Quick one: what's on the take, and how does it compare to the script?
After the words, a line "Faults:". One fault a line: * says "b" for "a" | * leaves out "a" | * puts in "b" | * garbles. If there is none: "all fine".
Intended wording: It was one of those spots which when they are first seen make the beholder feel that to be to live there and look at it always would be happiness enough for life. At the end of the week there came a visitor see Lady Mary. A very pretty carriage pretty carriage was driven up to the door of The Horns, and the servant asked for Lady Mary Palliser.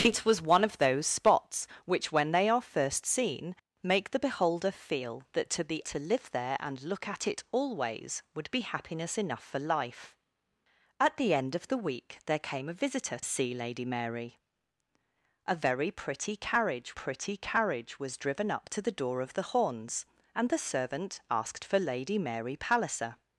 It was one of those spots which when they are first seen make the beholder feel that to be to live there and look at it always would be happiness enough for life. At the end of the week there came a visitor see Lady Mary. A very pretty carriage pretty carriage was driven up to the door of The Horns, and the servant asked for Lady Mary Palliser.
Faults:
all fine